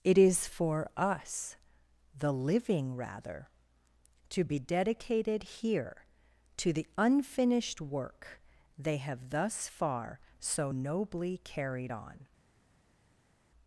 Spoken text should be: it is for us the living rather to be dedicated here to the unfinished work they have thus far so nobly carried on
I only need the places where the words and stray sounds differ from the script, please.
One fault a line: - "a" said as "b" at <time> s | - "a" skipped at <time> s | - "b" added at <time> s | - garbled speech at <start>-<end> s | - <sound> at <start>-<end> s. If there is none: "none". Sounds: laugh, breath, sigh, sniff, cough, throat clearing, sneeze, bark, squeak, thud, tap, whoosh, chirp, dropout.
none